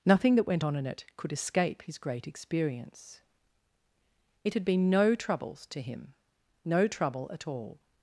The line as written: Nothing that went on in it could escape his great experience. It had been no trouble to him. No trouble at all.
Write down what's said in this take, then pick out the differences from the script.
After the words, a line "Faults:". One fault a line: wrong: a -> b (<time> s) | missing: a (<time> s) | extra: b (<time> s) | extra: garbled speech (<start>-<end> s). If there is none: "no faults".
Nothing that went on in it could escape his great experience. It had been no troubles to him. No trouble at all.
Faults:
wrong: trouble -> troubles (5.1 s)